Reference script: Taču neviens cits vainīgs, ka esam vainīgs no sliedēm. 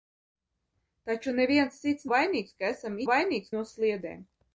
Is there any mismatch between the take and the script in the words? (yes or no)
no